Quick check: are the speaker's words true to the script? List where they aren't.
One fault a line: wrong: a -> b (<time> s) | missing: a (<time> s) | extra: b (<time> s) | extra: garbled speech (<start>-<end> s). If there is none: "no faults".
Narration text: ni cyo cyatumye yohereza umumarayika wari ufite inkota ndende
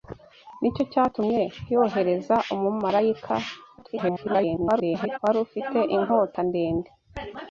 extra: garbled speech (3.8-5.2 s)